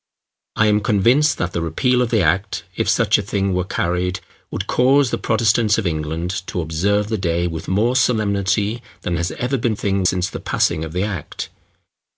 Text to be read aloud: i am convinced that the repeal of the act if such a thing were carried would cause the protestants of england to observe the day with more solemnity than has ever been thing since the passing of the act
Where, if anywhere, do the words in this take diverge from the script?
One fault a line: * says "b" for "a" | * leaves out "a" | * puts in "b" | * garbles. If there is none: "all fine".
all fine